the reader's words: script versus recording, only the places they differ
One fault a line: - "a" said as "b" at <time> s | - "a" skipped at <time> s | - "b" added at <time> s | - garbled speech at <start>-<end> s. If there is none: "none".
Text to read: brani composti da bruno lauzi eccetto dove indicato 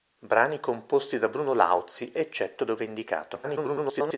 - garbled speech at 3.4-4.2 s